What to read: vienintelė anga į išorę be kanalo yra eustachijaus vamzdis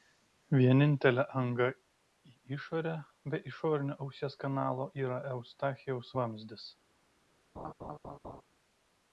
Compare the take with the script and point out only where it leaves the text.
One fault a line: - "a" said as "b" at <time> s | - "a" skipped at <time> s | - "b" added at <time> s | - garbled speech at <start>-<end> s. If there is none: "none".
- "išorinio ausies" added at 3.5 s